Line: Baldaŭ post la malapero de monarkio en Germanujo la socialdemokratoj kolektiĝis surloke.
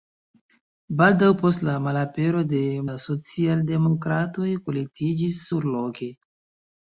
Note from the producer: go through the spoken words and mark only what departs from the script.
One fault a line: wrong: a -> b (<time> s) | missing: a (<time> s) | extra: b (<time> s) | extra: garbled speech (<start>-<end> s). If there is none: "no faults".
missing: monarkio en Germanujo (2.6 s)